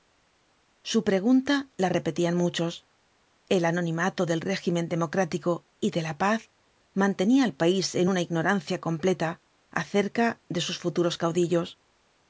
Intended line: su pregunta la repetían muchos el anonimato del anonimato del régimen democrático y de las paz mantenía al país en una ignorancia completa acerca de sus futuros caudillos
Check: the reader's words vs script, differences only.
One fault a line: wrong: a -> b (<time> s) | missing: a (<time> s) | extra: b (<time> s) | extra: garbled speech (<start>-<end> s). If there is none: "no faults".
missing: anonimato del (4.4 s)
wrong: las -> la (6.0 s)